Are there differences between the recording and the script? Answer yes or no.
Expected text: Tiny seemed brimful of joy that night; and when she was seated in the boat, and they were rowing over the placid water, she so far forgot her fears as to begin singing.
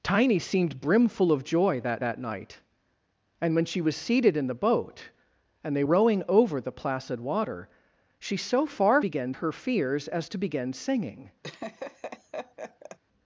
yes